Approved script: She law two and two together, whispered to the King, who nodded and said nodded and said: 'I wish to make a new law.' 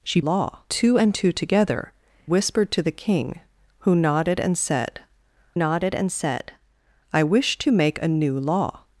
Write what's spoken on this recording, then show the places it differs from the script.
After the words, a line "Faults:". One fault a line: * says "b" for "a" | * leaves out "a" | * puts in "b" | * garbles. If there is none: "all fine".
She law two and two together, whispered to the King, who nodded and said nodded and said: 'I wish to make a new law.'
Faults:
all fine